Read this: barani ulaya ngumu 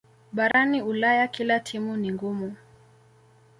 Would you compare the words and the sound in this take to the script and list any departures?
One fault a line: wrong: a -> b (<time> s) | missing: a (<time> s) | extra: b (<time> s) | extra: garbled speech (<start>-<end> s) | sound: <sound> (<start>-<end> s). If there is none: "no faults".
sound: dropout (0.5-0.5 s)
extra: kila timu ni (1.3 s)